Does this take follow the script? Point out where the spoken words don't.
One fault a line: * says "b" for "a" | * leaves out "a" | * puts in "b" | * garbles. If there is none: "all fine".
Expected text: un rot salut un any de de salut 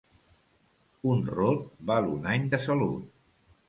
* says "val" for "salut"
* leaves out "de"